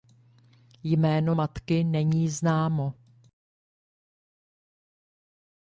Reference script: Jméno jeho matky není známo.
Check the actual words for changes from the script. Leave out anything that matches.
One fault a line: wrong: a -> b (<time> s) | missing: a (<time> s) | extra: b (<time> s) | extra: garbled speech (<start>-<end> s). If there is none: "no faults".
missing: jeho (1.4 s)